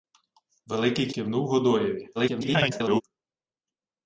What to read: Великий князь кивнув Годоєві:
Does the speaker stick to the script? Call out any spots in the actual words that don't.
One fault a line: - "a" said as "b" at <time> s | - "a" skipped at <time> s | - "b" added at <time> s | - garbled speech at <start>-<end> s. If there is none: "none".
- "князь" skipped at 1.1 s
- garbled speech at 2.1-3.0 s